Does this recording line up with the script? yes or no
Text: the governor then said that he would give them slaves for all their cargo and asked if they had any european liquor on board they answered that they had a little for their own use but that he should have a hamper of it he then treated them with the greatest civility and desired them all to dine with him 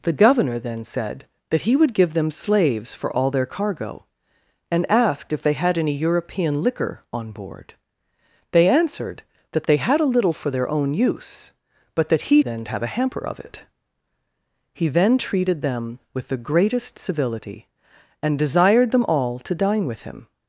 no